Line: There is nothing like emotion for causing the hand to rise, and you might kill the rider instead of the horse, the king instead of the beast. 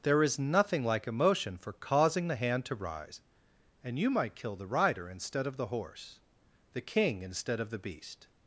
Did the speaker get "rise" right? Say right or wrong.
right